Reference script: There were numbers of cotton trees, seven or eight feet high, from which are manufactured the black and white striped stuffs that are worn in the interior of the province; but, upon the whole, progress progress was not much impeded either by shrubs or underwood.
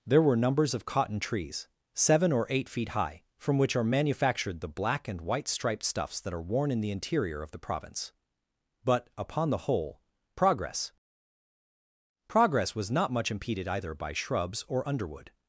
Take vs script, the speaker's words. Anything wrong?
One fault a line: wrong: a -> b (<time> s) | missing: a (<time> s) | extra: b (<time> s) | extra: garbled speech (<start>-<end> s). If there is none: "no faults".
no faults